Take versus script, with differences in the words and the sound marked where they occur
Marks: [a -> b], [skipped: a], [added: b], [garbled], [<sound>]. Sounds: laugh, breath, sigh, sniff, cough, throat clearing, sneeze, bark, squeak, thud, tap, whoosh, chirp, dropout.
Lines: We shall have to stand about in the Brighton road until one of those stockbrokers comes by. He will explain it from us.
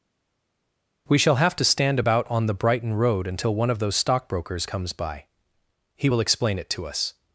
We shall have to stand about [in -> on] the Brighton road until one of those stockbrokers comes by. He will explain it [from -> to] us.